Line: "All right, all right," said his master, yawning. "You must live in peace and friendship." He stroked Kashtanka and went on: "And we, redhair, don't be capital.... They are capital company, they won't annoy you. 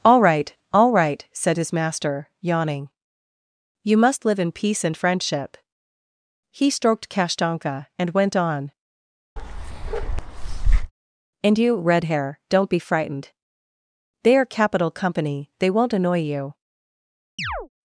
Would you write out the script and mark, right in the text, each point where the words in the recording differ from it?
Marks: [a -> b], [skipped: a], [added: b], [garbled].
"All right, all right," said his master, yawning. "You must live in peace and friendship." He stroked Kashtanka and went on: "And [we, -> you] redhair, don't be [capital.... -> frightened] They are capital company, they won't annoy you.